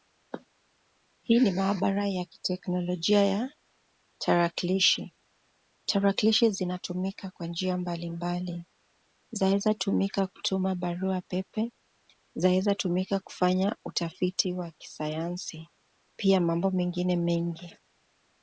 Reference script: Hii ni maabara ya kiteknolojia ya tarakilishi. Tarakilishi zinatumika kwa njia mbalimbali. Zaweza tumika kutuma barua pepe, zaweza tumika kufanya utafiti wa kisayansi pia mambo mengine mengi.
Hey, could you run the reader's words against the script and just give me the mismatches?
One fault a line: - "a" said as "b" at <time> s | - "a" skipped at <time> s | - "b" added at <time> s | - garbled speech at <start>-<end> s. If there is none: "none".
none